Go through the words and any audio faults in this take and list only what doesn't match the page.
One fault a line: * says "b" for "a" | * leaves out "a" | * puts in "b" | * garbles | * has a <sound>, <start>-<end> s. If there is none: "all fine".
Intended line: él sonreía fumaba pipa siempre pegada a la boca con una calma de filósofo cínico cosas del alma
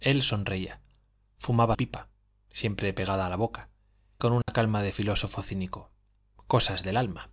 * has a dropout, 4.4-4.5 s